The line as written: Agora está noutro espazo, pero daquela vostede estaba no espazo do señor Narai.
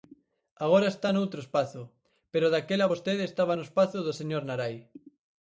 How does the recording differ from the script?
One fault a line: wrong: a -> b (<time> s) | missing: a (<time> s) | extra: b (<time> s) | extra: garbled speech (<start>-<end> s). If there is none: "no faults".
no faults